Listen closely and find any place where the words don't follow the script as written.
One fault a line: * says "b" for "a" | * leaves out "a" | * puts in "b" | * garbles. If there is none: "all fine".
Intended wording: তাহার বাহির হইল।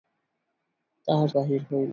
all fine